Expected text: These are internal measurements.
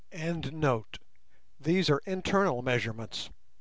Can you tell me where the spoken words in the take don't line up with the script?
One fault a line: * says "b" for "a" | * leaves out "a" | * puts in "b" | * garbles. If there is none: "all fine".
all fine